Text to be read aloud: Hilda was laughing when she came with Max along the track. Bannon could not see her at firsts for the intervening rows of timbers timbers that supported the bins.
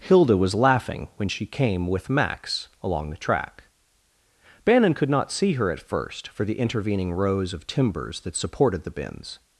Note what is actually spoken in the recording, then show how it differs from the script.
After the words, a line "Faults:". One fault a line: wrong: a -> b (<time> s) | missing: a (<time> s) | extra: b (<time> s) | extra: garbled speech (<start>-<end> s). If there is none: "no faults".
Hilda was laughing when she came with Max along the track. Bannon could not see her at first for the intervening rows of timbers that supported the bins.
Faults:
wrong: firsts -> first (5.8 s)
missing: timbers (8.2 s)